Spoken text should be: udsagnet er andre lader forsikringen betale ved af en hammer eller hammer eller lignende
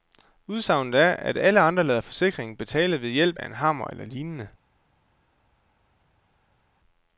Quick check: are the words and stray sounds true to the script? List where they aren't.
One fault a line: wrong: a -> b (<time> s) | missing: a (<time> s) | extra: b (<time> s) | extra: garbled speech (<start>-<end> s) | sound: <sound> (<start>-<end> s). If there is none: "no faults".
extra: at alle (1.1 s)
extra: hjælp (3.1 s)
missing: hammer eller (4.0 s)